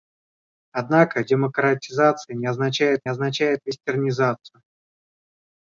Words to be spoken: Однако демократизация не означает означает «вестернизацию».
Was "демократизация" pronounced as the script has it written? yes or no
yes